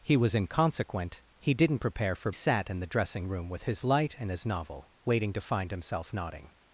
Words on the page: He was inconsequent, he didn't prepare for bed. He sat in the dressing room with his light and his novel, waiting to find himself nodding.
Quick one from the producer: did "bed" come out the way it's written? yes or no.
no